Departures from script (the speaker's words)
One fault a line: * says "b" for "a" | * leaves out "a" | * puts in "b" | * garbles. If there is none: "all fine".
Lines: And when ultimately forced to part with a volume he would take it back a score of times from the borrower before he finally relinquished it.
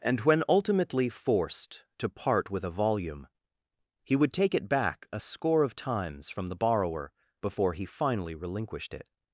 all fine